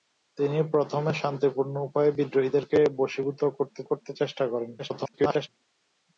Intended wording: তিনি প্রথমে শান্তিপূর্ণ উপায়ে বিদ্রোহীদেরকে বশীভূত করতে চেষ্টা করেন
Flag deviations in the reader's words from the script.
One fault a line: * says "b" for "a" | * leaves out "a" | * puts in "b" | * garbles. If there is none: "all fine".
* puts in "করতে"
* garbles